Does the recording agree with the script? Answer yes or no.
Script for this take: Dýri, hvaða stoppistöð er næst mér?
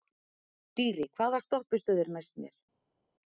yes